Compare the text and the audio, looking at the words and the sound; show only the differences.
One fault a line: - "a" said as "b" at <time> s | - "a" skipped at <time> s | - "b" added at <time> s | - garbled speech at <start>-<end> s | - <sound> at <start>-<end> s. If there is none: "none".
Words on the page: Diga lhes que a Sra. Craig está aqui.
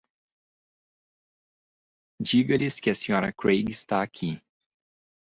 none